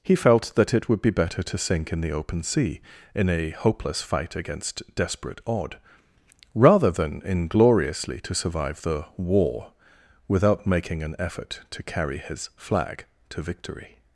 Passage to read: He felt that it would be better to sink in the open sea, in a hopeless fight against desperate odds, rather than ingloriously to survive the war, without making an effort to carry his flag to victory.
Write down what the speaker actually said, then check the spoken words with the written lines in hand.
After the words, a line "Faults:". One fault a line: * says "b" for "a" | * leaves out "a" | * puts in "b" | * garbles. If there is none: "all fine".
He felt that it would be better to sink in the open sea, in a hopeless fight against desperate odd, rather than ingloriously to survive the war, without making an effort to carry his flag to victory.
Faults:
* says "odd" for "odds"